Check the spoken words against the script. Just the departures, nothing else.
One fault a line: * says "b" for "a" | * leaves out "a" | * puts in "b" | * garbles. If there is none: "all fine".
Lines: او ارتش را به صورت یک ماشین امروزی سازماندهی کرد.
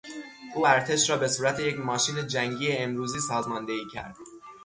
* puts in "جنگی"